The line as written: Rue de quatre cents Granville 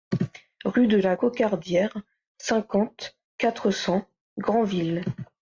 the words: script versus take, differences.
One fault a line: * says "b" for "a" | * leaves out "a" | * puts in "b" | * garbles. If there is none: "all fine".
* puts in "la Cocardière cinquante"